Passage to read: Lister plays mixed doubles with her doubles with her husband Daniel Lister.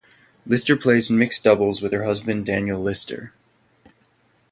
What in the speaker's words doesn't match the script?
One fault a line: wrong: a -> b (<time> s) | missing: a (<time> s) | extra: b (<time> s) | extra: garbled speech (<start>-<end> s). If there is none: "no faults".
missing: doubles with her (2.0 s)